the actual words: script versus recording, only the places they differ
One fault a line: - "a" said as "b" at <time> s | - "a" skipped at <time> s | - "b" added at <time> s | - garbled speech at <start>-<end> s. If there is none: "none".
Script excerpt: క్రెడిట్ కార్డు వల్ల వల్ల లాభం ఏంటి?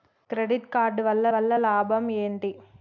none